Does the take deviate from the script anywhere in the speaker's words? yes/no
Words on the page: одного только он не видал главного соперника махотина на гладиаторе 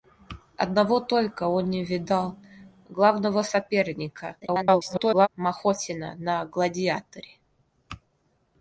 yes